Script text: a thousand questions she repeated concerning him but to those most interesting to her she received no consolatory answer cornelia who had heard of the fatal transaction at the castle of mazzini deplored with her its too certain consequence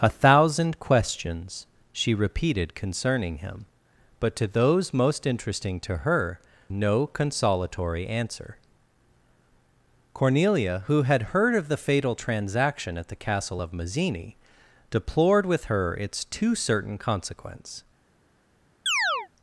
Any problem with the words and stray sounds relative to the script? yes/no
yes